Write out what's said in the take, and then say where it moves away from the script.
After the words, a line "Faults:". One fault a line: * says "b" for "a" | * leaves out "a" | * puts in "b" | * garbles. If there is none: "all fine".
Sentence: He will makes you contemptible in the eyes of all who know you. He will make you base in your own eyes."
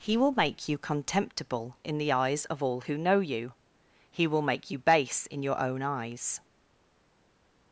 He will make you contemptible in the eyes of all who know you. He will make you base in your own eyes."
Faults:
* says "make" for "makes"